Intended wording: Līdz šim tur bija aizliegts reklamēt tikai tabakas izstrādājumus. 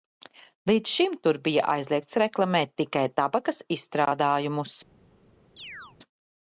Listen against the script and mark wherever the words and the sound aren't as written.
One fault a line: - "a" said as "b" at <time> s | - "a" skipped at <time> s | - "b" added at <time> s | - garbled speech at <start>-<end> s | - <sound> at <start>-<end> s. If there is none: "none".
- chirp at 5.6-6.0 s